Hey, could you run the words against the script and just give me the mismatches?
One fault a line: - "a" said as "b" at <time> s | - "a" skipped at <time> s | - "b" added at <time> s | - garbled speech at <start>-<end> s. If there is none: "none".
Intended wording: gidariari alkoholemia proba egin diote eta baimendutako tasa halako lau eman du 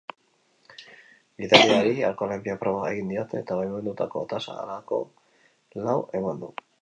none